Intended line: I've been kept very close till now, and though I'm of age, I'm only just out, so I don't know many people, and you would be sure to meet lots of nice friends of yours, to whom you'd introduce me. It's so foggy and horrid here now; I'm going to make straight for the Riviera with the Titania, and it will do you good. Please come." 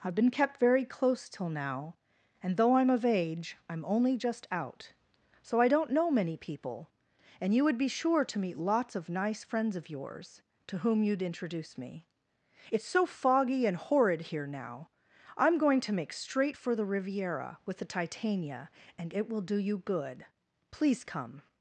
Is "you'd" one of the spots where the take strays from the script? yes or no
no